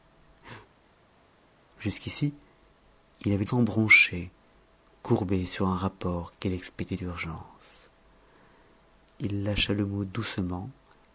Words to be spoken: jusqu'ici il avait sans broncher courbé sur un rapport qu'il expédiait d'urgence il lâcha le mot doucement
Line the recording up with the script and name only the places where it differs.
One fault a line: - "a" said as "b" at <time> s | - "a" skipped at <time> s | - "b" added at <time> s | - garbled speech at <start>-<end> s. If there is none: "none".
none